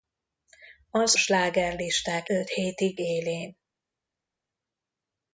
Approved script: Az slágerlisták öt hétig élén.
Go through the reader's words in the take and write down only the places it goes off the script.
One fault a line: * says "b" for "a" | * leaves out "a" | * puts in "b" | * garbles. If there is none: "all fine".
all fine